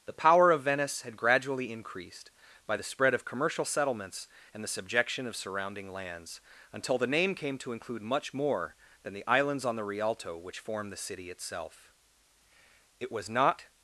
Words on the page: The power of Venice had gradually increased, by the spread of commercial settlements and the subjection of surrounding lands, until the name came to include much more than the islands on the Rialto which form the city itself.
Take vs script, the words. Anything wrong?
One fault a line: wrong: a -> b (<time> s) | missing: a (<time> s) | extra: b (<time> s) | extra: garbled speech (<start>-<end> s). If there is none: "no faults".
extra: It was not (13.0 s)